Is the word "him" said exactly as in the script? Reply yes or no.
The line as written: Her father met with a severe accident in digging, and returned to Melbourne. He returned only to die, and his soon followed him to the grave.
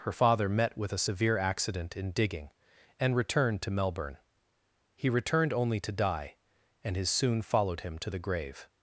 yes